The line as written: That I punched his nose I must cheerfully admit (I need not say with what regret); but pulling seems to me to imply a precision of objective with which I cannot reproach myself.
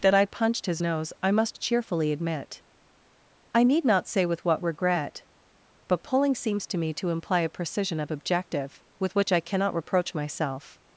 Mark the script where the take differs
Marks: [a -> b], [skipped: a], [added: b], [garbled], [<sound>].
That I punched his nose I must cheerfully admit (I need not say with what regret); but pulling seems to me to imply a precision of objective with which I cannot reproach myself.